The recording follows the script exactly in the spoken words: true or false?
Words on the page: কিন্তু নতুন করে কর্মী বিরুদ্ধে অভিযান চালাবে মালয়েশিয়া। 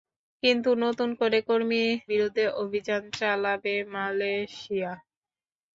true